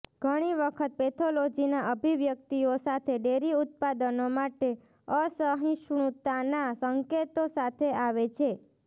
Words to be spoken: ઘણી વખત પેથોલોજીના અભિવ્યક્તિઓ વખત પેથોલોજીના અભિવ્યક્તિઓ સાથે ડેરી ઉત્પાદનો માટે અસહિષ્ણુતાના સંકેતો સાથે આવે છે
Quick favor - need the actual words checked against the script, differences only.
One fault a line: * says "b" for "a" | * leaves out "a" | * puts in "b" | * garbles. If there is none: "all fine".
* leaves out "વખત પેથોલોજીના અભિવ્યક્તિઓ"